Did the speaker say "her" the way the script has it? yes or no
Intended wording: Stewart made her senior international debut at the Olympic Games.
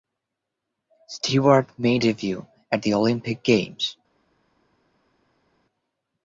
no